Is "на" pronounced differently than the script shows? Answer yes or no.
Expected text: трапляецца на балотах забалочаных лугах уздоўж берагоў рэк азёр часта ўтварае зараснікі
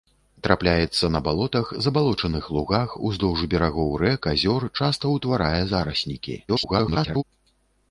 no